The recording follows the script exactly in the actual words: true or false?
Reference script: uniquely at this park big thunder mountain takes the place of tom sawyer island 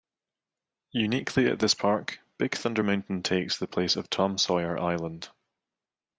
true